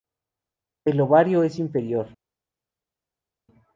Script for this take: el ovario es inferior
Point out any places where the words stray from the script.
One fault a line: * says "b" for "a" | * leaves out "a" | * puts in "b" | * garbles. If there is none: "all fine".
all fine